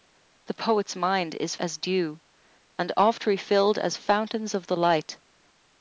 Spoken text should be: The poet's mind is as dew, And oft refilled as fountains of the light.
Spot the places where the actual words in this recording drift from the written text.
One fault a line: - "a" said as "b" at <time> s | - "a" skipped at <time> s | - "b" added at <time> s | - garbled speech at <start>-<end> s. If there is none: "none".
none